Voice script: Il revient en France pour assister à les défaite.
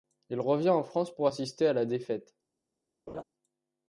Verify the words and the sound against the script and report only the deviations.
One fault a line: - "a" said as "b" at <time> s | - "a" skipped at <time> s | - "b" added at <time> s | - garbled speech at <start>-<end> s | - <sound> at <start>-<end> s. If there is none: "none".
- "les" said as "la" at 1.7 s
- laugh at 3.1-3.2 s